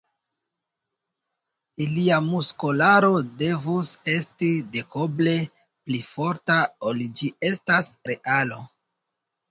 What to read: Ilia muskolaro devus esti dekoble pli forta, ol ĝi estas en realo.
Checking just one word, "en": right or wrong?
wrong